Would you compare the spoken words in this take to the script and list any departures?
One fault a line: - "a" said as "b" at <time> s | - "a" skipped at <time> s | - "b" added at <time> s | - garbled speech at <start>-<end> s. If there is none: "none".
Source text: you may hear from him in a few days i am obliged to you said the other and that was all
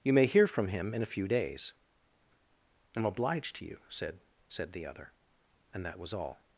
- "said" added at 4.5 s